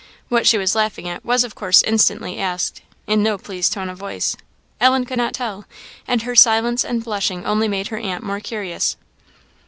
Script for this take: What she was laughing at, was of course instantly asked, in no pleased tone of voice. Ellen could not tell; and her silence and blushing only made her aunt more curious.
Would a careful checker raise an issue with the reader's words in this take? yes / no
no